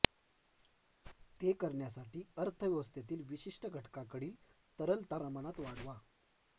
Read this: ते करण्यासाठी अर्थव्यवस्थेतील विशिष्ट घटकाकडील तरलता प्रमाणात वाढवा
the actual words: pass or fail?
pass